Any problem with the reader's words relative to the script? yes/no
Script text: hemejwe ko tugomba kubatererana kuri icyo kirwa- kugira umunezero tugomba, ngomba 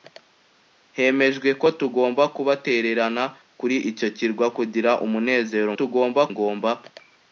no